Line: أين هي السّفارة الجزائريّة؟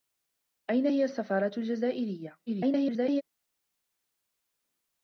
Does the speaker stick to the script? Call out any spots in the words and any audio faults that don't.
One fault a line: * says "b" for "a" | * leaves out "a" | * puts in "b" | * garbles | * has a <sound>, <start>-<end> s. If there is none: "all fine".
* garbles